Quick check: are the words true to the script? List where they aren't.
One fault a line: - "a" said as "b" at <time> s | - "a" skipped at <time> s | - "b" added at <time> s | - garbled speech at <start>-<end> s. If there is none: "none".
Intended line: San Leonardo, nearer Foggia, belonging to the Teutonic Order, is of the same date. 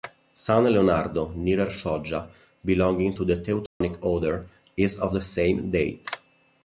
none